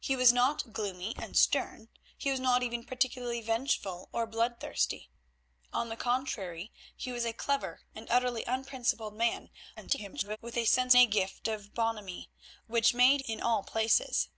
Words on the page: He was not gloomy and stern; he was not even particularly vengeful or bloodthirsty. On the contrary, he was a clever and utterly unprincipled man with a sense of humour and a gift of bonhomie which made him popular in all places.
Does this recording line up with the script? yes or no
no